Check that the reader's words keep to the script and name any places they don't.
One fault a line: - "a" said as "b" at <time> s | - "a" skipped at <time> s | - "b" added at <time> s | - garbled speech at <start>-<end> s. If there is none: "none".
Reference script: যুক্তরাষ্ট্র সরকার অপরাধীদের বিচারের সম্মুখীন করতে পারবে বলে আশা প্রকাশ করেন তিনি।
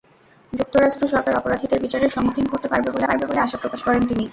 - "পারবে বলে" added at 3.0 s